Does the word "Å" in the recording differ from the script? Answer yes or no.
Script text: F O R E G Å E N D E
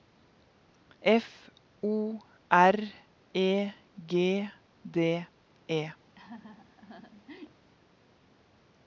yes